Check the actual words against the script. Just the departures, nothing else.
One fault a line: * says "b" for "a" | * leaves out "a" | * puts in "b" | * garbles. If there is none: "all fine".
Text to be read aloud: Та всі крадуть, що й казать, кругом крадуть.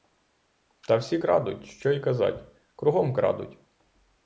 all fine